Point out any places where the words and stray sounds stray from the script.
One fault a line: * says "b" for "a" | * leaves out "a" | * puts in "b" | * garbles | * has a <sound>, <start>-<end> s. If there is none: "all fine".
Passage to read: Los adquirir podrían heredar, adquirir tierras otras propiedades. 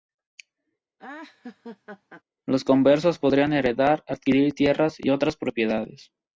* has a laugh, 1.0-2.2 s
* says "conversos" for "adquirir"
* puts in "y"